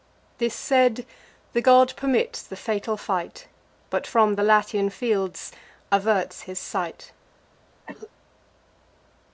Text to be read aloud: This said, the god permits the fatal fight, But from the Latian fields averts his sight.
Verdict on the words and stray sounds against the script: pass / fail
fail